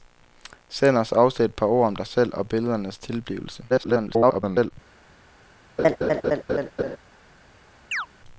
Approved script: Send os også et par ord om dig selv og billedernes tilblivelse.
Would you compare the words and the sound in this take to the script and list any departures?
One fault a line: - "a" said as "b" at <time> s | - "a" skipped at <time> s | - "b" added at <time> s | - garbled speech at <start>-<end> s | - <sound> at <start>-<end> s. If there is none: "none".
- garbled speech at 3.7-4.7 s
- laugh at 5.8-7.0 s
- chirp at 7.9-8.1 s